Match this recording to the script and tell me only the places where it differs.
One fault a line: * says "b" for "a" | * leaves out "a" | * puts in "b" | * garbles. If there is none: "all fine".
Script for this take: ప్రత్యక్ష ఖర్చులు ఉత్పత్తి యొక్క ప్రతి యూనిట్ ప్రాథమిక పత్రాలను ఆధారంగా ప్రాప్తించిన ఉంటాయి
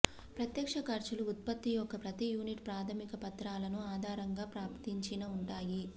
all fine